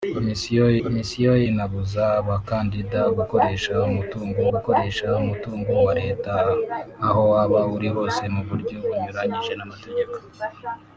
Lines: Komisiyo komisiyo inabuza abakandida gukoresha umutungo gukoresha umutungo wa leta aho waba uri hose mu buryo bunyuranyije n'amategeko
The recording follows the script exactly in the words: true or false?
true